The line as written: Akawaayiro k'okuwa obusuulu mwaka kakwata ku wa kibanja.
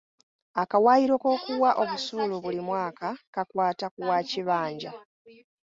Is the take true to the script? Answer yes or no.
no